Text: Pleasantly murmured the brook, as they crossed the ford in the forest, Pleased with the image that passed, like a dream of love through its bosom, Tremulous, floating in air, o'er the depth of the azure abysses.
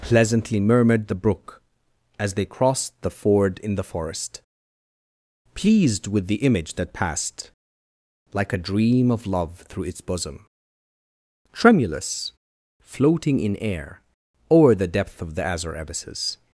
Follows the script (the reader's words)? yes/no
yes